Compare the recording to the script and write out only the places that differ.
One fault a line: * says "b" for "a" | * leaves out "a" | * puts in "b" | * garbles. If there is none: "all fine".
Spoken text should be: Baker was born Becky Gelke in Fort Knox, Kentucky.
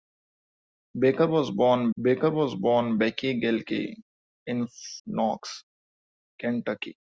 * puts in "baker was born"
* leaves out "Fort"